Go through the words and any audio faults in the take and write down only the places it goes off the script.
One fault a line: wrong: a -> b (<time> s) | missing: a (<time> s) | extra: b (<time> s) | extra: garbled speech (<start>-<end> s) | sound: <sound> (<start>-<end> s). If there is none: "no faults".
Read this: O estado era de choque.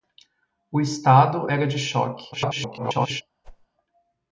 extra: garbled speech (2.3-3.2 s)
sound: whoosh (3.4-3.7 s)